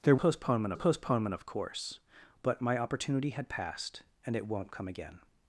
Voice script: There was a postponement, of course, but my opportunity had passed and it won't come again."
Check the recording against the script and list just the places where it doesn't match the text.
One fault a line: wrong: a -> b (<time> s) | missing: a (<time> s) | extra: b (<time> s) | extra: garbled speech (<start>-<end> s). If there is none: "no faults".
wrong: was -> postponement (0.1 s)